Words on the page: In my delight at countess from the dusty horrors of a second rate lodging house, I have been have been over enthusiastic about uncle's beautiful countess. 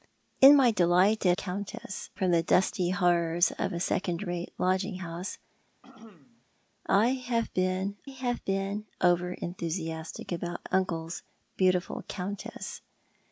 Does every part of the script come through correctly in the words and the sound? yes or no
no